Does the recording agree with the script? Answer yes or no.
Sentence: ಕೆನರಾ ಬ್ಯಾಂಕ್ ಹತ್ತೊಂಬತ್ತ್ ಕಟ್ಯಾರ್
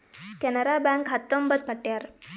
yes